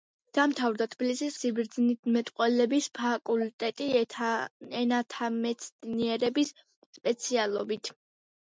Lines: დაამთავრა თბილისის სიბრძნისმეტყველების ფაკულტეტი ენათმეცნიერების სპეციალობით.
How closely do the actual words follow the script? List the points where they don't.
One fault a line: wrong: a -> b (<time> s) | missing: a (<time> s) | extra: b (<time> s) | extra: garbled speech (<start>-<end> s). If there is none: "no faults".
no faults